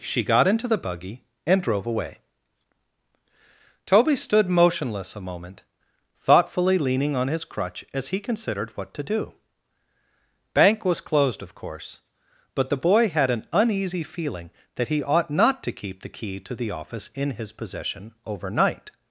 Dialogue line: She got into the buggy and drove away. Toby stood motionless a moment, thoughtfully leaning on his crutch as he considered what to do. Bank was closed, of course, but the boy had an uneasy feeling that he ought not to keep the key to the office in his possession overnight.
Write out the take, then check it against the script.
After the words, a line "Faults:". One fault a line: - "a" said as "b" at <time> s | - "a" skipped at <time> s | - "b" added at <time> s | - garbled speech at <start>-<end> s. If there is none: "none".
She got into the buggy and drove away. Toby stood motionless a moment, thoughtfully leaning on his crutch as he considered what to do. Bank was closed, of course, but the boy had an uneasy feeling that he ought not to keep the key to the office in his possession overnight.
Faults:
none